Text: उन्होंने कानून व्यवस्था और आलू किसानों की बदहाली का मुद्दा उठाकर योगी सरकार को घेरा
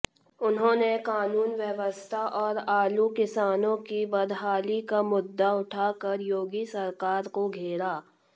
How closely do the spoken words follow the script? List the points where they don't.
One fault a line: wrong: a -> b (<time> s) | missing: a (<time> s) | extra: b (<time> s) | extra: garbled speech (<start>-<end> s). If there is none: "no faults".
no faults